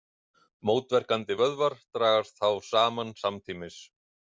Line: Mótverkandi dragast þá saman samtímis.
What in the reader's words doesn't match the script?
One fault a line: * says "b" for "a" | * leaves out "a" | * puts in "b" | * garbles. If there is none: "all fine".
* puts in "vöðvar"